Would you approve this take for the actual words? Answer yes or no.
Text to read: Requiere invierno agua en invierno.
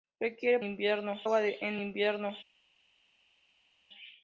yes